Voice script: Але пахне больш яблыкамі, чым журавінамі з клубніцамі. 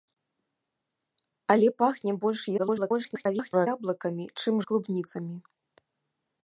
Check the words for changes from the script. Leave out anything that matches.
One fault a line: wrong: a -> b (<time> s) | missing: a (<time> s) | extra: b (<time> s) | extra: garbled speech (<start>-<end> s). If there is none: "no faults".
extra: garbled speech (2.6-3.7 s)
missing: журавінамі (4.5 s)